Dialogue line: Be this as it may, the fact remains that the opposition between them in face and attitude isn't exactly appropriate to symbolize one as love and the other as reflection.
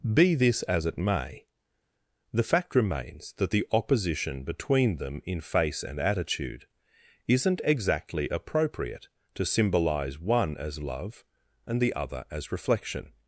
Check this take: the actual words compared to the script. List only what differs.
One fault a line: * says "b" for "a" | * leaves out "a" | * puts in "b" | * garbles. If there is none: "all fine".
all fine